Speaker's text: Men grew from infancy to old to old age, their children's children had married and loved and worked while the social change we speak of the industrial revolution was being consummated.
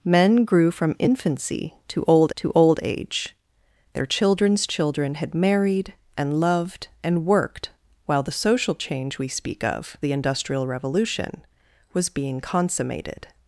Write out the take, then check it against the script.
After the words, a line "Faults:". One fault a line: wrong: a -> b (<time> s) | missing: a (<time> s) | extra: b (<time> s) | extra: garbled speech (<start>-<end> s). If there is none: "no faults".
Men grew from infancy to old to old age, their children's children had married and loved and worked while the social change we speak of the industrial revolution was being consummated.
Faults:
no faults